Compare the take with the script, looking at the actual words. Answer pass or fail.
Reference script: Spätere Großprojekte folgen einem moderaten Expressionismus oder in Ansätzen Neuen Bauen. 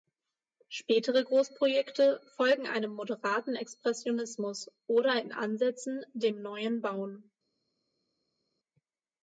fail